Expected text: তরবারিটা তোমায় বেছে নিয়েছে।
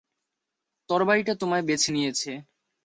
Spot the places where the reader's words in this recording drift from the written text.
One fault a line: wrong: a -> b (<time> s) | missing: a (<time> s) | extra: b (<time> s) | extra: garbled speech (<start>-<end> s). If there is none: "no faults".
no faults